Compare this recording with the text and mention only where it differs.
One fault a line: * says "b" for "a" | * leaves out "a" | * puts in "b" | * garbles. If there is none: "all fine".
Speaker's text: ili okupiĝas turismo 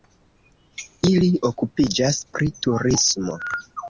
* puts in "pri"